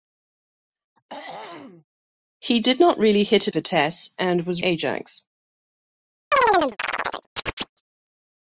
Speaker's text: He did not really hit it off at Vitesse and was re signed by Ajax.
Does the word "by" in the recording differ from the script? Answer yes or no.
yes